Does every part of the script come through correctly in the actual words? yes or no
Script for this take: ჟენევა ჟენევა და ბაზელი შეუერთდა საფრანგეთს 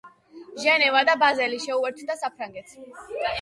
no